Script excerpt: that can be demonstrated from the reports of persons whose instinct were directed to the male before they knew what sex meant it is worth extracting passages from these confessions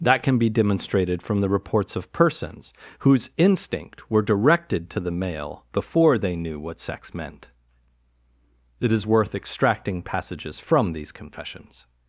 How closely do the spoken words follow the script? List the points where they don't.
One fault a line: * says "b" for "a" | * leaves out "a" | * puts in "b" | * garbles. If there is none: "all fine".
all fine